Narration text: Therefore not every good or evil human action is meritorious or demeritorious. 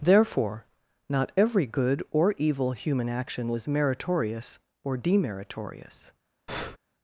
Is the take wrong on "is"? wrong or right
wrong